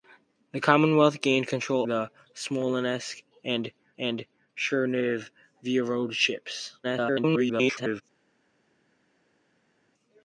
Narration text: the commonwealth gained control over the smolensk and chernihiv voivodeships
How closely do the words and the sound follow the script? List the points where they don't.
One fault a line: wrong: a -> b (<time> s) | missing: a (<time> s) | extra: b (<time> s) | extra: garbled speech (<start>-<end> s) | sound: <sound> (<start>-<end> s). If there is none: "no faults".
missing: over (1.9 s)
extra: and (4.0 s)
extra: garbled speech (6.8-8.0 s)